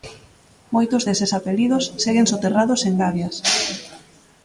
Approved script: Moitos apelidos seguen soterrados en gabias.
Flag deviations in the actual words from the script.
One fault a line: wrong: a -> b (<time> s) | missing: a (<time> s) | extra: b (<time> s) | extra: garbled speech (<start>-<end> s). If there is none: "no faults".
extra: deses (1.1 s)